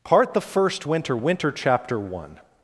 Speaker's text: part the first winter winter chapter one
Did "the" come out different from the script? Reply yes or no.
no